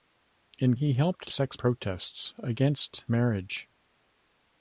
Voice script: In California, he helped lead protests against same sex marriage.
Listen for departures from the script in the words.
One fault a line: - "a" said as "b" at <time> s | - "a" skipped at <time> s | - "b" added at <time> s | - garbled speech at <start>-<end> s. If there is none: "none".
- "California" skipped at 0.8 s
- "lead" said as "sex" at 1.3 s
- "same sex" skipped at 3.1 s